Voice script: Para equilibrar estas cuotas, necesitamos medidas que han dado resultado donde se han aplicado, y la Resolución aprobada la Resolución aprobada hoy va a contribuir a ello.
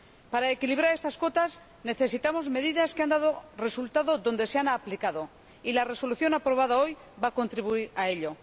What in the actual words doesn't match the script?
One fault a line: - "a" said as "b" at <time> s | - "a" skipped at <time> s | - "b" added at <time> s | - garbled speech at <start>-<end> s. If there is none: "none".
- "la Resolución aprobada" skipped at 6.8 s